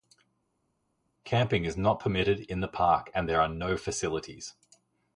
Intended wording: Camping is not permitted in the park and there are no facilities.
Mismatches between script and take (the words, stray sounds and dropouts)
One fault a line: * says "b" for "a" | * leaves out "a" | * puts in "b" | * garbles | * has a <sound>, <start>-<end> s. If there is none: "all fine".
all fine